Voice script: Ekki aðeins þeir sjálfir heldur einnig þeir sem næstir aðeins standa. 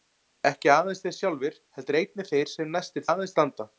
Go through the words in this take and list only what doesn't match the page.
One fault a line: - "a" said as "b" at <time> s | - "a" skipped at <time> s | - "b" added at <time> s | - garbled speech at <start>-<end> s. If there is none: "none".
none